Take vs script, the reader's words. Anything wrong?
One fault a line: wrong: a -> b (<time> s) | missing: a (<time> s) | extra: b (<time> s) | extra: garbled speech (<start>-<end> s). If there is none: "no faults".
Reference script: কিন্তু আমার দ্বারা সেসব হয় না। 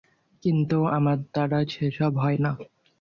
no faults